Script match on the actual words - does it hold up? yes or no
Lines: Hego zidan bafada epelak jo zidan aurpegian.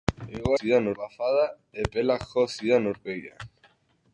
yes